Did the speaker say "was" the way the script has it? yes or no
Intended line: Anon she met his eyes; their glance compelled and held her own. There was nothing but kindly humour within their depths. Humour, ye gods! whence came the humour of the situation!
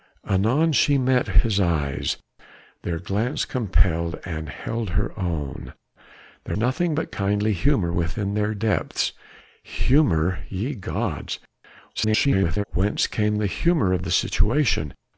no